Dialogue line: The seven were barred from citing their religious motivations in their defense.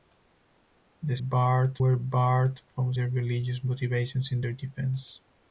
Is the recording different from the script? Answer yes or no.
yes